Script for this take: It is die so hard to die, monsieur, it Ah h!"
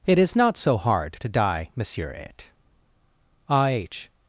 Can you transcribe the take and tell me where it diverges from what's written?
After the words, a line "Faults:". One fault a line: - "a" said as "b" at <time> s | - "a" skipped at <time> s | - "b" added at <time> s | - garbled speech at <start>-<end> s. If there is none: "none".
It is not so hard to die, monsieur, it Ah h!"
Faults:
- "die" said as "not" at 0.3 s